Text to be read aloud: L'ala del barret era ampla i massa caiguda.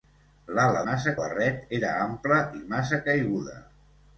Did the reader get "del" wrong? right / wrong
wrong